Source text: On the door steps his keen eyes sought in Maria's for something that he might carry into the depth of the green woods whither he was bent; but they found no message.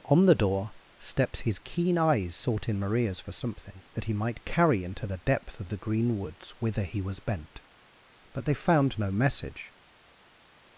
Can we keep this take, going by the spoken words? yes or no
yes